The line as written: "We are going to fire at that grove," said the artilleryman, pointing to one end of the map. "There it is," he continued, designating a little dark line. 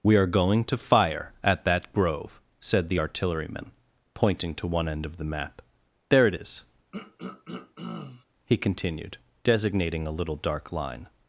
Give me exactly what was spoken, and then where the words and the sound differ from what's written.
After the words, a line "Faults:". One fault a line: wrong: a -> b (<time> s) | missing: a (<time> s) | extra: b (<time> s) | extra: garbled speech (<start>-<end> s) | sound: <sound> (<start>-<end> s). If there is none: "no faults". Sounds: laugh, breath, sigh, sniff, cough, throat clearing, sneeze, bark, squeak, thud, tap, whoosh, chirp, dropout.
"We are going to fire at that grove," said the artilleryman, pointing to one end of the map. "There it is," he continued, designating a little dark line.
Faults:
sound: throat clearing (6.9-8.2 s)